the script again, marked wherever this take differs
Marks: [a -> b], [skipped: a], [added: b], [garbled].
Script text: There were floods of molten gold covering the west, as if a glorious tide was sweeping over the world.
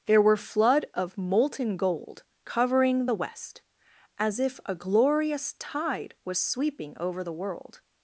There were [floods -> flood] of molten gold covering the west, as if a glorious tide was sweeping over the world.